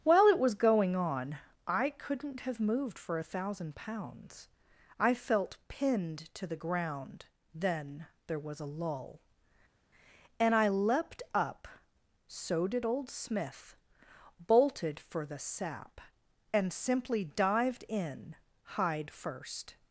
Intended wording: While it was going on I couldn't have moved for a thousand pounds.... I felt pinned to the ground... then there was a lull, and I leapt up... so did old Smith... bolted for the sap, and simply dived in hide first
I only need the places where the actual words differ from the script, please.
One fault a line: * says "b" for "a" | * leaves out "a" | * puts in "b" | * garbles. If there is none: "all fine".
all fine